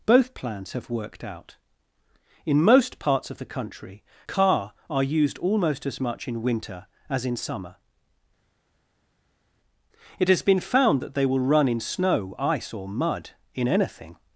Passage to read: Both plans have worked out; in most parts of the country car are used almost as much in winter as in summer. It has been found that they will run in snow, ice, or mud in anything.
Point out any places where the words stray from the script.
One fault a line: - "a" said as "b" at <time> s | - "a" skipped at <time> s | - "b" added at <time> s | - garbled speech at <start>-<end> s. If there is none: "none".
none